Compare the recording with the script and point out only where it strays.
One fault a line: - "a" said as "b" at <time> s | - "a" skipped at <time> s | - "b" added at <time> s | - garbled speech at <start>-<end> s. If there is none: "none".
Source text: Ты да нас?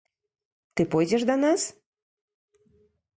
- "пойдзеш" added at 0.8 s